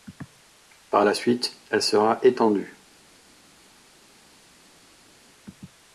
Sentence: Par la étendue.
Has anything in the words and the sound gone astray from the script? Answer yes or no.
yes